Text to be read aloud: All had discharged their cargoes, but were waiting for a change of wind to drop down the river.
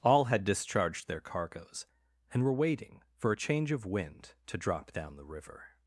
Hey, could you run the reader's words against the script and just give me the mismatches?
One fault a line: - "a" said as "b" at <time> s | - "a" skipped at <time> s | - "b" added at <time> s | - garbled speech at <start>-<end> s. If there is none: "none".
- "but" said as "and" at 2.3 s